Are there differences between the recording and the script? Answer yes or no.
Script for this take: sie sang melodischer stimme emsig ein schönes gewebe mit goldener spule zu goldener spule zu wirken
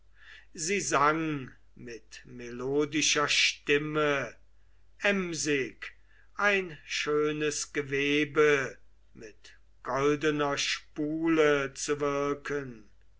yes